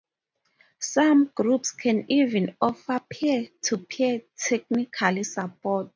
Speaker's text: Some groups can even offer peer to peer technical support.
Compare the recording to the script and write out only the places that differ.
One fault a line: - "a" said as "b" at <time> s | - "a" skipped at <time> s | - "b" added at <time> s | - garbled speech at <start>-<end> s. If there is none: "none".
none